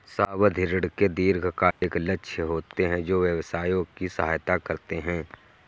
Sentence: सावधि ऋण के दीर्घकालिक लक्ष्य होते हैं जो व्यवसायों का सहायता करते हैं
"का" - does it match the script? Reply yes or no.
no